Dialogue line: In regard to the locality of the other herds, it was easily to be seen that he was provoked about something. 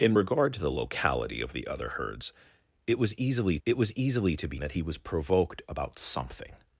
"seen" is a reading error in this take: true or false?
true